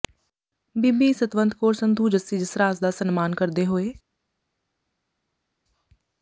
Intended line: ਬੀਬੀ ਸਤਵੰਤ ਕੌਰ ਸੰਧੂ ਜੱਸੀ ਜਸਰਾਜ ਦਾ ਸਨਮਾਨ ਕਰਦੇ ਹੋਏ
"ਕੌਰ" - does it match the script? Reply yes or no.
yes